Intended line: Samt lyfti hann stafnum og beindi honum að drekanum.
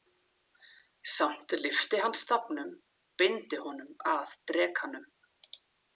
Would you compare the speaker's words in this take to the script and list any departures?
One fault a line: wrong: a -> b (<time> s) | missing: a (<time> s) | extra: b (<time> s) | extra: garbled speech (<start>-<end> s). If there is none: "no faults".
missing: og (2.7 s)